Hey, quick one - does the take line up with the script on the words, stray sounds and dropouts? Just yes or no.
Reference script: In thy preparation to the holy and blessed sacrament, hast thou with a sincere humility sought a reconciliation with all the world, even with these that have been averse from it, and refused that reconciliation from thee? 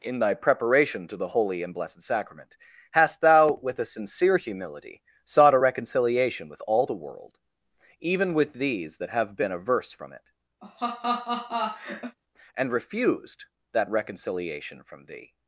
no